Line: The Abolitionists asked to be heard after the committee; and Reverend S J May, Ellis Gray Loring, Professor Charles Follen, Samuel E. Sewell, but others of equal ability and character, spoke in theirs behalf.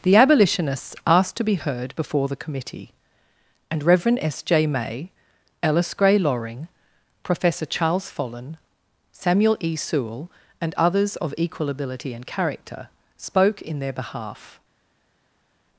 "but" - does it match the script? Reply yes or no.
no